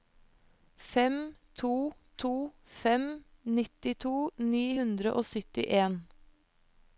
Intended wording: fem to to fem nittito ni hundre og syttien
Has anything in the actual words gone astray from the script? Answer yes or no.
no